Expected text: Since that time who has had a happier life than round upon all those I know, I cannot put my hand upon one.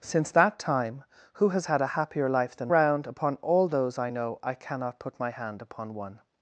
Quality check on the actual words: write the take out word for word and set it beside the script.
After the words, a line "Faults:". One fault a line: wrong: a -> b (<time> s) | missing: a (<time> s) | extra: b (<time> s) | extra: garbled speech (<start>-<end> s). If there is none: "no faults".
Since that time who has had a happier life than round upon all those I know, I cannot put my hand upon one.
Faults:
no faults